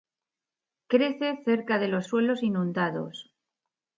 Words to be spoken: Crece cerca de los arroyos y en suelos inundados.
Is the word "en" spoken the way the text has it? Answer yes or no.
no